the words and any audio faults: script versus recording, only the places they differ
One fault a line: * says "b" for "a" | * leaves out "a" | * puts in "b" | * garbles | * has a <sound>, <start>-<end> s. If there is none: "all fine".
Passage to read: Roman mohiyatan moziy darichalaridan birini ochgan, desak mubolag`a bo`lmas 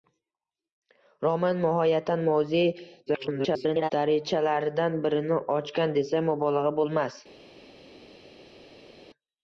* garbles